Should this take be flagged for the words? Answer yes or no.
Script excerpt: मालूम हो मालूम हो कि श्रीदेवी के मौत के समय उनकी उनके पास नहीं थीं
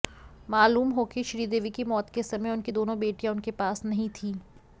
yes